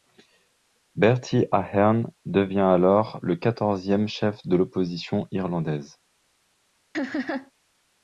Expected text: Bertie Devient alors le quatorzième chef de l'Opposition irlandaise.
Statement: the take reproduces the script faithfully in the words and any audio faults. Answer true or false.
false